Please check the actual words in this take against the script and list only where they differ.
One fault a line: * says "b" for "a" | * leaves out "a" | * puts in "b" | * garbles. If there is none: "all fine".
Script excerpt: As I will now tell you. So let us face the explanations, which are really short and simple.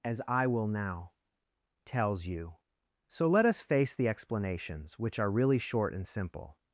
* says "tells" for "tell"